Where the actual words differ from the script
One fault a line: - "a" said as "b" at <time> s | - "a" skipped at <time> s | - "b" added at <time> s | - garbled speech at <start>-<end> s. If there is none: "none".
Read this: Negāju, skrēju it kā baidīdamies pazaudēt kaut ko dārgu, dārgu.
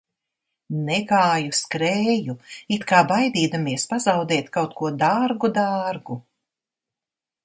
none